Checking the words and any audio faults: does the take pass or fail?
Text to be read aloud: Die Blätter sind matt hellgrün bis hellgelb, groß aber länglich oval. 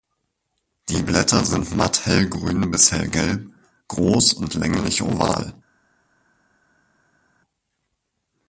fail